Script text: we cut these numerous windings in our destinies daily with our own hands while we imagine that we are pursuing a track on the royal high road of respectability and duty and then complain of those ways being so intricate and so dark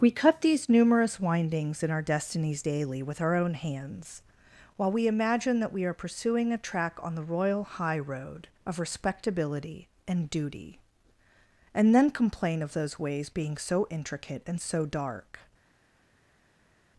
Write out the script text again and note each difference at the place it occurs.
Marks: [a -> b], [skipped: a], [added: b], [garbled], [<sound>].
we cut these numerous windings in our destinies daily with our own hands while we imagine that we are pursuing a track on the royal high road of respectability and duty and then complain of those ways being so intricate and so dark